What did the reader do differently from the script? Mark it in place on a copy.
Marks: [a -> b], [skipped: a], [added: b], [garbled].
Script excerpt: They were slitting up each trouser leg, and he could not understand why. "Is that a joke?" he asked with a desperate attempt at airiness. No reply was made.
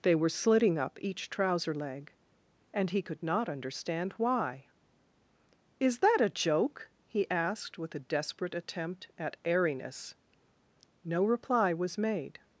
They were slitting up each trouser leg, and he could not understand why. "Is that a joke?" he asked with a desperate attempt at airiness. No reply was made.